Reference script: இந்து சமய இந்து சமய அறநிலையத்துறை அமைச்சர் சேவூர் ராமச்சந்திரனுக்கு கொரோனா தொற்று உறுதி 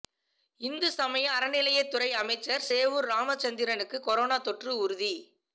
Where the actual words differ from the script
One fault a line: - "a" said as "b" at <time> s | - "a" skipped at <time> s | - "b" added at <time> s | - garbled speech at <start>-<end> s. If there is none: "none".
- "இந்து சமய" skipped at 1.2 s